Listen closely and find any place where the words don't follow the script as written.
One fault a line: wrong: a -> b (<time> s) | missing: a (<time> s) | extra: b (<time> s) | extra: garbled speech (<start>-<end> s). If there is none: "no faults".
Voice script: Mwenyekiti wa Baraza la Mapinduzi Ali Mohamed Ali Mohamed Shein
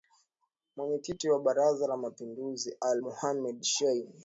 missing: Ali Mohamed (3.6 s)